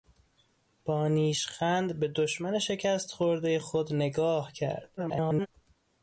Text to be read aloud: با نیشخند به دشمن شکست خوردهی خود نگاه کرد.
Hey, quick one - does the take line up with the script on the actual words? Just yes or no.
no